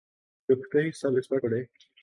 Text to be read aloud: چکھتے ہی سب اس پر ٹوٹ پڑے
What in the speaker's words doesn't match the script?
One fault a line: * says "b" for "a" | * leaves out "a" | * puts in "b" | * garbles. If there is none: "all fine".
* leaves out "ٹوٹ"